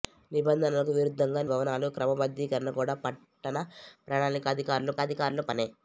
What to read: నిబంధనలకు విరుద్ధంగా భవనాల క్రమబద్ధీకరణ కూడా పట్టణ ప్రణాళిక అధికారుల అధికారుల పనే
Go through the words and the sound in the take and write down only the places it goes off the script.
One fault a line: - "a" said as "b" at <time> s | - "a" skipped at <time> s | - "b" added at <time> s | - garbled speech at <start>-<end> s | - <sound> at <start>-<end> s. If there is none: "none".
none